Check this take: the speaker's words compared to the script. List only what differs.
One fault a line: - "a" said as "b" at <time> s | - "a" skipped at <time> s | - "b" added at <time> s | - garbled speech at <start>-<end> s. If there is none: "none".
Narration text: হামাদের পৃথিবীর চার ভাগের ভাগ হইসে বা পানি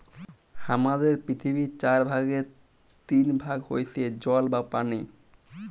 - "তিন" added at 3.1 s
- "জল" added at 4.2 s